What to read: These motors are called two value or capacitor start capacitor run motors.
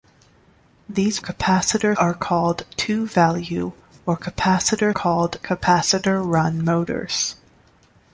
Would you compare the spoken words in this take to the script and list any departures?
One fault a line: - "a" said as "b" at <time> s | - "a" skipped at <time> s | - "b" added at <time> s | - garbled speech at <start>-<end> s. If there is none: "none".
- "motors" said as "capacitor" at 1.2 s
- "start" said as "called" at 4.9 s